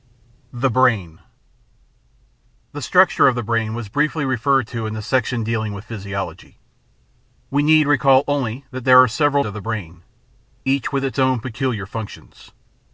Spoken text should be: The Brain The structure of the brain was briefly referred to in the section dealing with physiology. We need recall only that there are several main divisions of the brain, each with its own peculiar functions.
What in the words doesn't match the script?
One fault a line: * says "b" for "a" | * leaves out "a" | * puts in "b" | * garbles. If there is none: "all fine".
* leaves out "main divisions"